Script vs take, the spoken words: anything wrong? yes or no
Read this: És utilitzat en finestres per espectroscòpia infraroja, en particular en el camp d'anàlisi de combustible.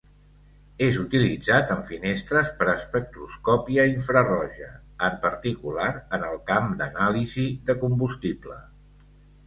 no